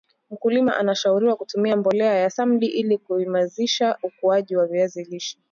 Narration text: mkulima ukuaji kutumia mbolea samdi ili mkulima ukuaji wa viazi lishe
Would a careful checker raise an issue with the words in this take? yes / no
yes